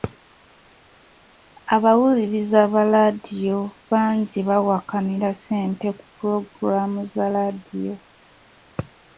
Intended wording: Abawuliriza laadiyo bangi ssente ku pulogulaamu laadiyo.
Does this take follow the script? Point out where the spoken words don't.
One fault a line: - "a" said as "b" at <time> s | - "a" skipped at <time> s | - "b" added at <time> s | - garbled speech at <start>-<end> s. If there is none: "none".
- "ba" added at 2.7 s
- "bawakanira" added at 4.5 s
- "za" added at 7.1 s